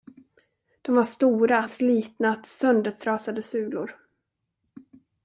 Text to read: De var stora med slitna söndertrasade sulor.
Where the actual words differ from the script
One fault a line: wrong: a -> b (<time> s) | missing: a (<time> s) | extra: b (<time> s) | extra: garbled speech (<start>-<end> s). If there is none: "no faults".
missing: med (1.7 s)